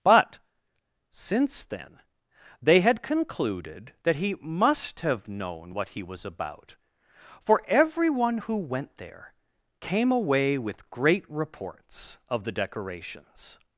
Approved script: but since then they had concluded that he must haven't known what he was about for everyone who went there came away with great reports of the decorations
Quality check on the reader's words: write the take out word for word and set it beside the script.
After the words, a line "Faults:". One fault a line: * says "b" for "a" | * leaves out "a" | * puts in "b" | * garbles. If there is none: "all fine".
but since then they had concluded that he must have known what he was about for everyone who went there came away with great reports of the decorations
Faults:
* says "have" for "haven't"